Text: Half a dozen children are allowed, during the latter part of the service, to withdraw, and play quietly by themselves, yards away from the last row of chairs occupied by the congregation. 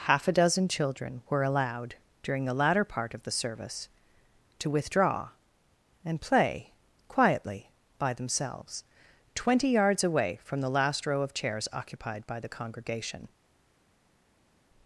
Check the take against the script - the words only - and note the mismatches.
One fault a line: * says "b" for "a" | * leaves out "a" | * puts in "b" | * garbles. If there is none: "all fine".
* says "were" for "are"
* puts in "twenty"